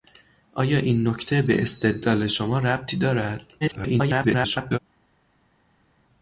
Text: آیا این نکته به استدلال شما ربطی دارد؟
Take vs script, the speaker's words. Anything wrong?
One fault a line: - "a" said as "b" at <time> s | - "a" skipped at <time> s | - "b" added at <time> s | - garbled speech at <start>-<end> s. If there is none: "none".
- garbled speech at 3.6-4.8 s